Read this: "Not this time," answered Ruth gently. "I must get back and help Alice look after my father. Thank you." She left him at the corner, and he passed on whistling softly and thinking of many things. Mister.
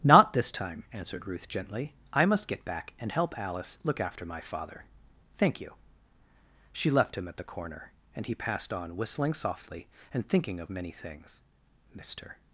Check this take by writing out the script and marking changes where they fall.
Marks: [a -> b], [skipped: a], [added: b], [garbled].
"Not this time," answered Ruth gently. "I must get back and help Alice look after my father. Thank you." She left him at the corner, and he passed on whistling softly and thinking of many things. Mister.